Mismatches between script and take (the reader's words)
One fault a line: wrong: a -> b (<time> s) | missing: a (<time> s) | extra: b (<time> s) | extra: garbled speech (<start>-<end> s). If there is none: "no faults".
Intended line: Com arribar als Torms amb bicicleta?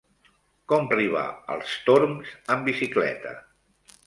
no faults